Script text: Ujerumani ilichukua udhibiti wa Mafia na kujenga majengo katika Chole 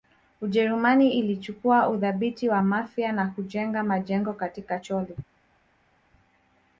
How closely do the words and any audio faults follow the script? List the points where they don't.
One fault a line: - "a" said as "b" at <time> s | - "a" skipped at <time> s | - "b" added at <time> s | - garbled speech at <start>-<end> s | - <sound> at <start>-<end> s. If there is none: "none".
none